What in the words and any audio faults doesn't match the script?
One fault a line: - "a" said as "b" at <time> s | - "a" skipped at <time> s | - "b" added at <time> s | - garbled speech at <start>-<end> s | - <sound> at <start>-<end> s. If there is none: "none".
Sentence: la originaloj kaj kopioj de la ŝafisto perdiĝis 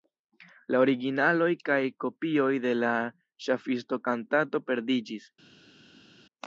- "kantato" added at 4.1 s